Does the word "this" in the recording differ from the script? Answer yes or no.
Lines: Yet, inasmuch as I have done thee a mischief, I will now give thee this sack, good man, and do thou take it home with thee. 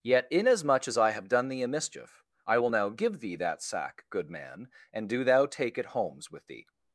yes